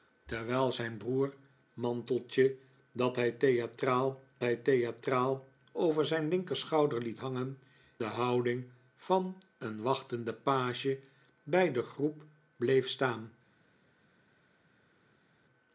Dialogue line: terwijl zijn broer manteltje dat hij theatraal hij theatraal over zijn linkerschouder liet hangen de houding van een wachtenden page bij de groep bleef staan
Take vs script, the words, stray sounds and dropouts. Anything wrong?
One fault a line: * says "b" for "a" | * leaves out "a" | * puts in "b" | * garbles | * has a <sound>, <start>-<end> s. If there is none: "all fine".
all fine